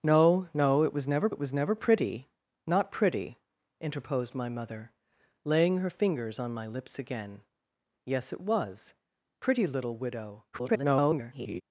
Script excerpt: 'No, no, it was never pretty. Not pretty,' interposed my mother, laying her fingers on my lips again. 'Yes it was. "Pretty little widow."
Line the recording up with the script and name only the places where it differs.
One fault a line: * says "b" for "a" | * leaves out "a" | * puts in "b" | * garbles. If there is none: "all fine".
* puts in "it was never"
* garbles